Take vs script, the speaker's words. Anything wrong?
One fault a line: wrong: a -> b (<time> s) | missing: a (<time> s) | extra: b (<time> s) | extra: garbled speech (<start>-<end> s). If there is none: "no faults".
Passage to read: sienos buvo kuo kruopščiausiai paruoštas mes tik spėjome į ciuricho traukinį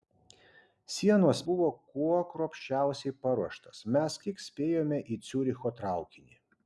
no faults